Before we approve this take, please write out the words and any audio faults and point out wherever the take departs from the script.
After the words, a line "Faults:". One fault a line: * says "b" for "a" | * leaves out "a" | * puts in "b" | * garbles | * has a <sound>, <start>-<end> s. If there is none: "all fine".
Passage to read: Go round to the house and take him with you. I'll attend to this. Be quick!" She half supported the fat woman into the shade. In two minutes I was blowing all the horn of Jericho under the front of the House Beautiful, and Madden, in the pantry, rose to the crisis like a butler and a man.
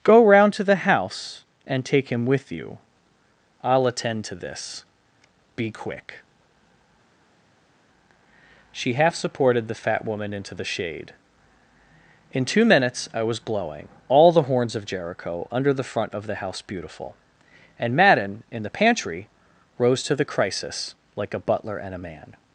Go round to the house and take him with you. I'll attend to this. Be quick!" She half supported the fat woman into the shade. In two minutes I was blowing all the horns of Jericho under the front of the House Beautiful, and Madden, in the pantry, rose to the crisis like a butler and a man.
Faults:
* says "horns" for "horn"